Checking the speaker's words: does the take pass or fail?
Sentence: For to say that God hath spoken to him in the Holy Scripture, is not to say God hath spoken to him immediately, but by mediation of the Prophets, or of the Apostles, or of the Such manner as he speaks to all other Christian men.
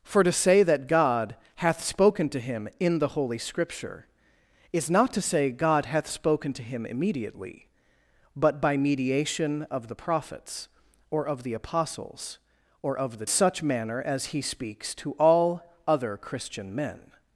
pass